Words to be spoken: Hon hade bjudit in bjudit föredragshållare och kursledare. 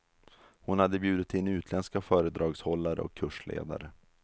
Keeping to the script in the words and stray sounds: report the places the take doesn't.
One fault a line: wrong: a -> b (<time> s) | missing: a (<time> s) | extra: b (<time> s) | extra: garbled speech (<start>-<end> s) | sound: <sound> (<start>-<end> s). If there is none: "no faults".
wrong: bjudit -> utländska (1.5 s)